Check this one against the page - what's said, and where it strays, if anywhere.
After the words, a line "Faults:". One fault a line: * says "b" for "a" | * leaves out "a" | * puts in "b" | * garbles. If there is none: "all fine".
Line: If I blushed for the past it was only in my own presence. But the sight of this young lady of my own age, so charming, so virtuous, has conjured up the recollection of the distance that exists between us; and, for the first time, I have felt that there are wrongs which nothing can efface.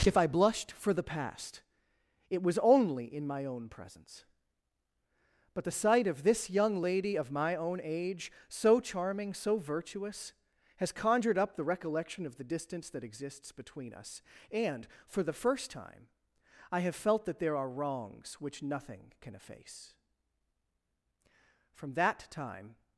If I blushed for the past it was only in my own presence. But the sight of this young lady of my own age, so charming, so virtuous, has conjured up the recollection of the distance that exists between us; and, for the first time, I have felt that there are wrongs which nothing can efface. From that time
Faults:
* puts in "From that time"